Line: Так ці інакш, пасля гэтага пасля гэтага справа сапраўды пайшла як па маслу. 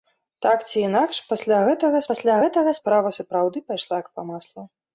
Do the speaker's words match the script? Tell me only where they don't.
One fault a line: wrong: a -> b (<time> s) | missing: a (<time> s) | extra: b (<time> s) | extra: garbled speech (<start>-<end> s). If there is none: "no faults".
no faults